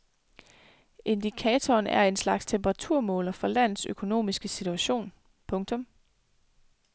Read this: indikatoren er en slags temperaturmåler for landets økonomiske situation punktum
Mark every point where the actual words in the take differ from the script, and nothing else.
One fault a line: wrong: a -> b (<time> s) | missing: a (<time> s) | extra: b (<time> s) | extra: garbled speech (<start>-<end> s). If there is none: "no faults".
no faults